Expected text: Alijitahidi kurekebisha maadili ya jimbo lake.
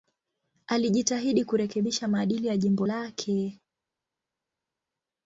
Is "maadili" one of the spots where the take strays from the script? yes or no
no